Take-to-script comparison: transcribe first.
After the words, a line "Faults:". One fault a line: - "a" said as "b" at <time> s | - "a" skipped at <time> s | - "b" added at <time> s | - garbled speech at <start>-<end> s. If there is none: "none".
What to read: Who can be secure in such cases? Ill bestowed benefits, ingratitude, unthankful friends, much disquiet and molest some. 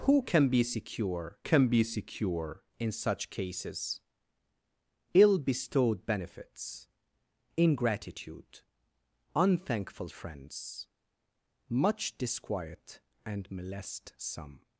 Who can be secure can be secure in such cases? Ill bestowed benefits, ingratitude, unthankful friends, much disquiet and molest some.
Faults:
- "can be secure" added at 1.4 s